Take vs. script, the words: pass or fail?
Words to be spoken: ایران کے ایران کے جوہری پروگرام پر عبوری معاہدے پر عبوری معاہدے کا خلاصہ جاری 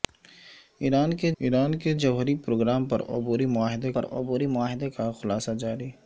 pass